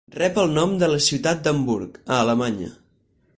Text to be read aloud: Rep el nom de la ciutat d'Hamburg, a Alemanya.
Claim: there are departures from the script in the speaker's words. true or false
false